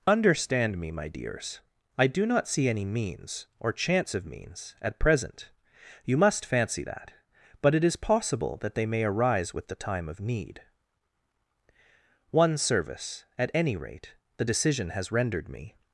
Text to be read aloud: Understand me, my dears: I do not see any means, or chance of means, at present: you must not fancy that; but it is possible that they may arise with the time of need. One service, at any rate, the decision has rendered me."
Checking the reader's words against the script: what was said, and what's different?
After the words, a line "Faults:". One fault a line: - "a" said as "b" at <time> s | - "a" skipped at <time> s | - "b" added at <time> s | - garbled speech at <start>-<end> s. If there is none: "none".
Understand me, my dears: I do not see any means, or chance of means, at present: you must fancy that; but it is possible that they may arise with the time of need. One service, at any rate, the decision has rendered me."
Faults:
- "not" skipped at 6.4 s